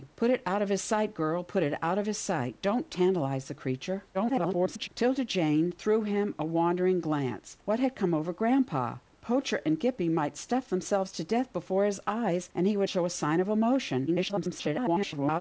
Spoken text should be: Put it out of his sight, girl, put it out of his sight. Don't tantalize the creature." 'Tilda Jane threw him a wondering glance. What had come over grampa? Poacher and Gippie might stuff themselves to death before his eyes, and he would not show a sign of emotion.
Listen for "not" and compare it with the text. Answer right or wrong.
wrong